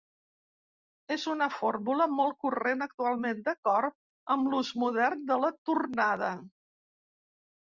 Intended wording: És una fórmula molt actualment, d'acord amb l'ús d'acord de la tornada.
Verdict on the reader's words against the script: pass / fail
fail